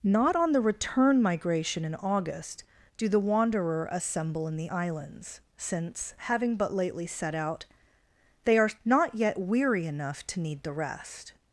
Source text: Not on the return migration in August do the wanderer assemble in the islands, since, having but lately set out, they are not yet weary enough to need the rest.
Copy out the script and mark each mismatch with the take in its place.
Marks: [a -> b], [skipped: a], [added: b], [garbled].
Not on the return migration in August do the wanderer assemble in the islands, since, having but lately set out, they are not yet weary enough to need the rest.